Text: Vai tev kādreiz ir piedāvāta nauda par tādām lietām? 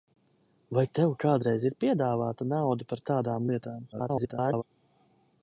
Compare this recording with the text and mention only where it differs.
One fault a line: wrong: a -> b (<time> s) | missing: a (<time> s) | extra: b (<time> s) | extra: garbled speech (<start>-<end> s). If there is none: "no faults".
extra: garbled speech (3.9-4.6 s)